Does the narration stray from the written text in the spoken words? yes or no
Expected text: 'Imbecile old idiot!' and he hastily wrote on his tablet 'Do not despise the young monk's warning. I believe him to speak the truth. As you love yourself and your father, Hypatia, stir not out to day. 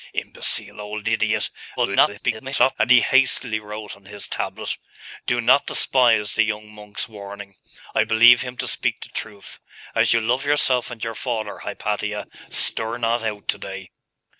yes